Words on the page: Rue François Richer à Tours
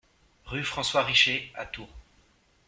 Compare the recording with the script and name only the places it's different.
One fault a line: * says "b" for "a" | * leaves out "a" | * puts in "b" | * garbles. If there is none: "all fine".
all fine